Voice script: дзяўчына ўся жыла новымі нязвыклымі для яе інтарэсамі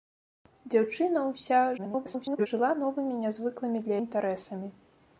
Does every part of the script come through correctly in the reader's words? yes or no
no